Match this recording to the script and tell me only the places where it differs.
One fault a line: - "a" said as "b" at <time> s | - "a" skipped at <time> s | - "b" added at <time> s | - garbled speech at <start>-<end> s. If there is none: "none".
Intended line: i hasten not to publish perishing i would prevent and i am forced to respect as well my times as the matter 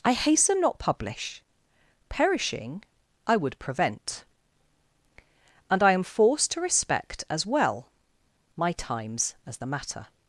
- "to" skipped at 0.8 s